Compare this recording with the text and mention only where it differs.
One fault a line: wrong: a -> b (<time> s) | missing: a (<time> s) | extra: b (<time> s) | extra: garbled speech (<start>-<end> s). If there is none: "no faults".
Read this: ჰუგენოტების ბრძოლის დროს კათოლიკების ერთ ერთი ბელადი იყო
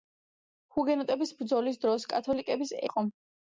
missing: ერთ ერთი ბელადი (2.7 s)